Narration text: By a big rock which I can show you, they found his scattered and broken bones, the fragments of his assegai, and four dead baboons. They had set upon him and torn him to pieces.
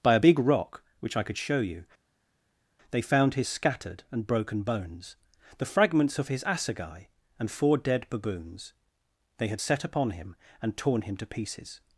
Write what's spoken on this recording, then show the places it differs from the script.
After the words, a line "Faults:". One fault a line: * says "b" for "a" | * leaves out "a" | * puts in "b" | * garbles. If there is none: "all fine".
By a big rock which I could show you, they found his scattered and broken bones, the fragments of his assegai, and four dead baboons. They had set upon him and torn him to pieces.
Faults:
* says "could" for "can"